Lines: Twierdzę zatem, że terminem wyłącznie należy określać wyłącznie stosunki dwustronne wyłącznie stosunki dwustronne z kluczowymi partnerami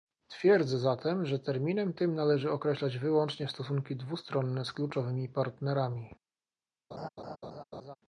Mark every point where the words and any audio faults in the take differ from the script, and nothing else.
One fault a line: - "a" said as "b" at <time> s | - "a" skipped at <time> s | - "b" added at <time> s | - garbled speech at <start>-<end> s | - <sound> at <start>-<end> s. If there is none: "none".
- "wyłącznie" said as "tym" at 1.9 s
- "wyłącznie stosunki dwustronne" skipped at 4.7 s
- laugh at 6.9-8.0 s